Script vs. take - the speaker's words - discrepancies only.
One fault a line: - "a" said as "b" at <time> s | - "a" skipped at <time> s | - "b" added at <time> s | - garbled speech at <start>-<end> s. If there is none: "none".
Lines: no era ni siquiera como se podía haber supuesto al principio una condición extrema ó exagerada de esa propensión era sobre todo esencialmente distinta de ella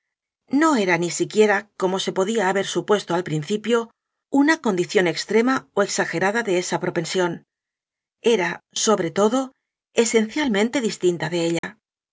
none